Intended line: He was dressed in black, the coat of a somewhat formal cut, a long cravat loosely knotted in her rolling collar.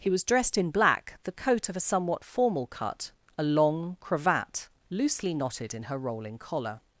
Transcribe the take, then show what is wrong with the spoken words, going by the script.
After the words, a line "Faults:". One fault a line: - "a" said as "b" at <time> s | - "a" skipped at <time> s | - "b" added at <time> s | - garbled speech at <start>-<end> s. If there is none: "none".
He was dressed in black, the coat of a somewhat formal cut, a long cravat loosely knotted in her rolling collar.
Faults:
none